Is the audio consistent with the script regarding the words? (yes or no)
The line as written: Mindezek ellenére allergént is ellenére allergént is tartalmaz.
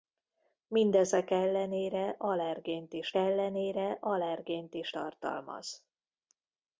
yes